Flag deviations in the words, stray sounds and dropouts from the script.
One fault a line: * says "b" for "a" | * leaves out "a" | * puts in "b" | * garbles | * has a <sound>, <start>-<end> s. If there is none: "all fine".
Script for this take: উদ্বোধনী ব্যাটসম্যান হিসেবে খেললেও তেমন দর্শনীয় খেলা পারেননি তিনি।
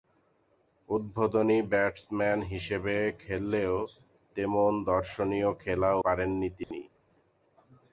* has a dropout, 6.6-6.7 s